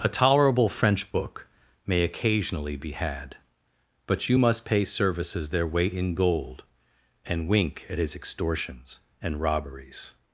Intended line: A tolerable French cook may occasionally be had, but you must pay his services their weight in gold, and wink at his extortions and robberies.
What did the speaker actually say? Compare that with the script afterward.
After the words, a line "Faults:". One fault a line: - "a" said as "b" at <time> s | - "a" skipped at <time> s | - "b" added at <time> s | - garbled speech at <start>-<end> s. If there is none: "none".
A tolerable French book may occasionally be had, but you must pay services their weight in gold, and wink at his extortions and robberies.
Faults:
- "cook" said as "book" at 1.1 s
- "his" skipped at 4.8 s